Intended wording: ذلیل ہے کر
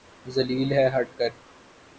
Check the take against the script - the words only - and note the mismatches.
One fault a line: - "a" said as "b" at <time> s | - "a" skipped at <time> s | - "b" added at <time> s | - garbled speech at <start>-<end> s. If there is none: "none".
- "ہٹ" added at 0.9 s